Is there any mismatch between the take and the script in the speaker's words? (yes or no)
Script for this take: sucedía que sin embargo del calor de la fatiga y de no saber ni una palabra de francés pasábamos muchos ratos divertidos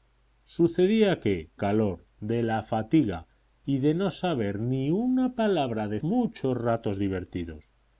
yes